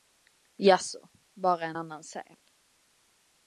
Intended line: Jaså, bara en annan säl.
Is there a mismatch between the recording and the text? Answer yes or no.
no